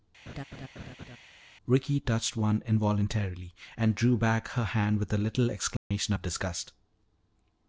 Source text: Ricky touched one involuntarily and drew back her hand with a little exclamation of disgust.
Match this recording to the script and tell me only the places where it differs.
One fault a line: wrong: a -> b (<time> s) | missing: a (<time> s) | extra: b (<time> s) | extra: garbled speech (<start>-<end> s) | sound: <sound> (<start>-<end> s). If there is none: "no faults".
sound: laugh (0.3-1.2 s)
sound: dropout (5.8-5.9 s)